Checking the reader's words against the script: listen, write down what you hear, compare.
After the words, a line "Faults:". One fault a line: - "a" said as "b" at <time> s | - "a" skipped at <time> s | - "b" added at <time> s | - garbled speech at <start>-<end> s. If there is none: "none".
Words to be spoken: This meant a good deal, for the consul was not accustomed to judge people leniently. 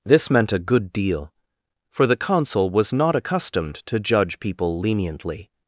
This meant a good deal, for the consul was not accustomed to judge people leniently.
Faults:
none